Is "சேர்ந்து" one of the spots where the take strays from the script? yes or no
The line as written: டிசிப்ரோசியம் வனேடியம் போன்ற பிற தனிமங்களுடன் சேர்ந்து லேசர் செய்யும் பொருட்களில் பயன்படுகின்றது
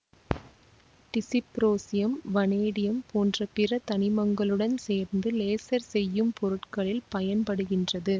no